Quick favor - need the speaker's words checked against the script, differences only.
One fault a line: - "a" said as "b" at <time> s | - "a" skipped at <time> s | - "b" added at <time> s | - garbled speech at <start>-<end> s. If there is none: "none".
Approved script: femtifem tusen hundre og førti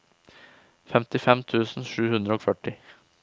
- "sju" added at 1.9 s